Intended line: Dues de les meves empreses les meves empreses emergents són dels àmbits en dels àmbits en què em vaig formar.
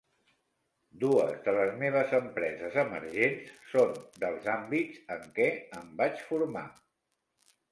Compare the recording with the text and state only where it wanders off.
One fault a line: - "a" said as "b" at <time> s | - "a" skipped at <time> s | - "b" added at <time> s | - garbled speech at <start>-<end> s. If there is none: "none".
- "les meves empreses" skipped at 2.8 s
- "dels àmbits en" skipped at 5.3 s